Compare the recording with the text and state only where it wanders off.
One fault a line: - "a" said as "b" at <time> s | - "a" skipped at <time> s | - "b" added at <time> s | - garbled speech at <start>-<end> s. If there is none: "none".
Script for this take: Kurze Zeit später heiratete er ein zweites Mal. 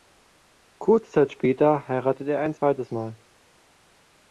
none